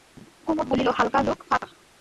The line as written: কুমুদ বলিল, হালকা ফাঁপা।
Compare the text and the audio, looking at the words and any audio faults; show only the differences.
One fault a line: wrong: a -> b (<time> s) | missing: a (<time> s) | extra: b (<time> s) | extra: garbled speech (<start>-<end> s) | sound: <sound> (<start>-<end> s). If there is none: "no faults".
extra: লোক (1.2 s)